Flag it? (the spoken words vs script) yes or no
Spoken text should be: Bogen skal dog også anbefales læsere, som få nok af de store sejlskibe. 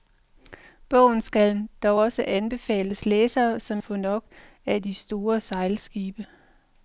no